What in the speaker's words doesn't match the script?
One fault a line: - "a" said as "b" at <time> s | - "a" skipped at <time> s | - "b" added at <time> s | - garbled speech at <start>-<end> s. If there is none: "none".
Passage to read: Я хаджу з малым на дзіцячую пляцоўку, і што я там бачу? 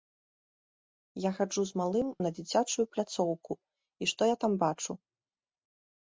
none